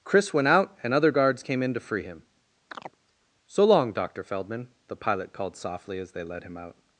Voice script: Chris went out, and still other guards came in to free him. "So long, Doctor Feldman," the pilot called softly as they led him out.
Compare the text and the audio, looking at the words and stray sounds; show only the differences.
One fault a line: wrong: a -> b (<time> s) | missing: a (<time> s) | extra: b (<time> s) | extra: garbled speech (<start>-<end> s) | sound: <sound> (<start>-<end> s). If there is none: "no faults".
missing: still (0.9 s)
sound: chirp (2.7-3.0 s)